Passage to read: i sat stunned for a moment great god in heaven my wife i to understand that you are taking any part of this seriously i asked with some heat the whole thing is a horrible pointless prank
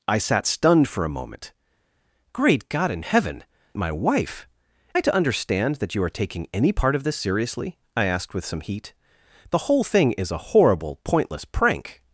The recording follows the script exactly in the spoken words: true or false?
true